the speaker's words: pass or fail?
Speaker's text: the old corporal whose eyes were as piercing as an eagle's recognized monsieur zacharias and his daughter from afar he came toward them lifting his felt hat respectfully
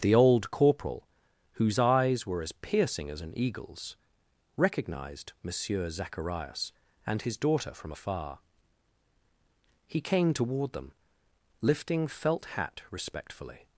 fail